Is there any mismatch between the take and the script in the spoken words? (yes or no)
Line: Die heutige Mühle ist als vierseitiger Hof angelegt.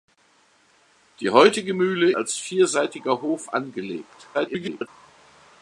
yes